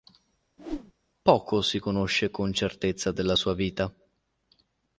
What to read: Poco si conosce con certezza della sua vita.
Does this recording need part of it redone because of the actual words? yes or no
no